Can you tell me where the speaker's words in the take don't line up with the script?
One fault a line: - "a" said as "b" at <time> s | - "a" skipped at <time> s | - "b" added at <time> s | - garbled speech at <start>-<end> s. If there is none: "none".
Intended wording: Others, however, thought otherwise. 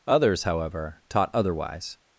- "thought" said as "taught" at 1.1 s